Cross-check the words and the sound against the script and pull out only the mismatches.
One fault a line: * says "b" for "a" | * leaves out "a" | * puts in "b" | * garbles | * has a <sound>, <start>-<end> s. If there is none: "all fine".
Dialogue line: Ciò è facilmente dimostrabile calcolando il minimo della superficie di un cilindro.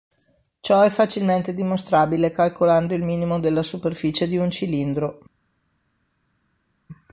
all fine